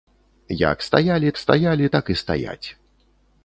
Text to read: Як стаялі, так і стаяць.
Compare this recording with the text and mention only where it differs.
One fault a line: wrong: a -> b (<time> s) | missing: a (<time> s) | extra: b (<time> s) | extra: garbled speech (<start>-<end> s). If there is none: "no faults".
extra: стаялі (1.4 s)